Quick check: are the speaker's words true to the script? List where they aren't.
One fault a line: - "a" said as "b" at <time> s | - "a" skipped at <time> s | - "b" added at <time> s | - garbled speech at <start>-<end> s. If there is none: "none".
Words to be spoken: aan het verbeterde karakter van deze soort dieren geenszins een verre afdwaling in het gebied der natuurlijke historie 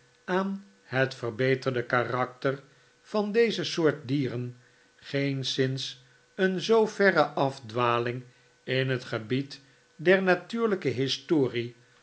- "zoo" added at 6.6 s